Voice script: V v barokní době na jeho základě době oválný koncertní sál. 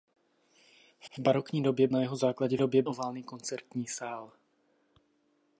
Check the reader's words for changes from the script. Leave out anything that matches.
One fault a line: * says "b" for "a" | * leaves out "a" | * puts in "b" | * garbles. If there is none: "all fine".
all fine